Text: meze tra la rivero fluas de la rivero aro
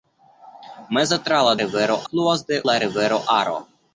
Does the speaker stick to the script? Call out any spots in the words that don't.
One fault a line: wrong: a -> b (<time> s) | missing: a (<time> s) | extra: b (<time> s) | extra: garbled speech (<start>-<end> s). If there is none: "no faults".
no faults